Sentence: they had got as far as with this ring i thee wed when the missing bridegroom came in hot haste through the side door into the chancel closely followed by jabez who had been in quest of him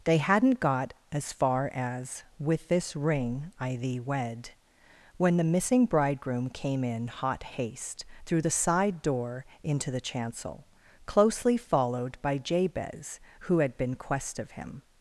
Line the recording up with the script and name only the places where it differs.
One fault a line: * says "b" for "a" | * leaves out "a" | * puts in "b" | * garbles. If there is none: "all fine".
* says "hadn't" for "had"
* leaves out "in"